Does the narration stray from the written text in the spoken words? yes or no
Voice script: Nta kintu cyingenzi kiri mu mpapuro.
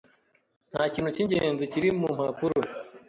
no